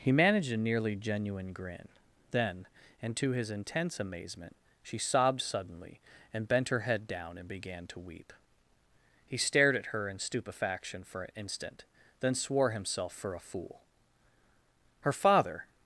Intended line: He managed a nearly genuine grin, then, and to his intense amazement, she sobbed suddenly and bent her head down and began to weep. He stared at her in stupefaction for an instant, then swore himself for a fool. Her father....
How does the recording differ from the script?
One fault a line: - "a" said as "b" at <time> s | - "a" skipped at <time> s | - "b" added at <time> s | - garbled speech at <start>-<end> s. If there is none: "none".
none